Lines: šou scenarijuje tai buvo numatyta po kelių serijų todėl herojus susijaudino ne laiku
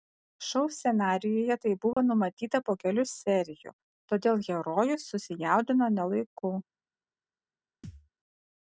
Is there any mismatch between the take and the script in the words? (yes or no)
no